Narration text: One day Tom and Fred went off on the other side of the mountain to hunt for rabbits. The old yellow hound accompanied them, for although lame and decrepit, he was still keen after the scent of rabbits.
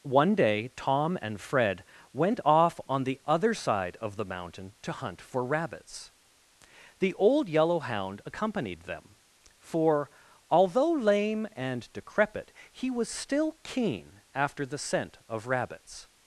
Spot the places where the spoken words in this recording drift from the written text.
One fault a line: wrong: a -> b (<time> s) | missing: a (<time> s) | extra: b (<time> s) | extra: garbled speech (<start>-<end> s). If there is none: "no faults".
no faults